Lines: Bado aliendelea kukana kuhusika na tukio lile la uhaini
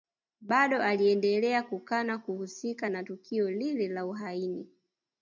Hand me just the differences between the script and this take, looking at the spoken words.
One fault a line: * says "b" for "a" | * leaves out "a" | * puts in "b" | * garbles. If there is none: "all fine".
all fine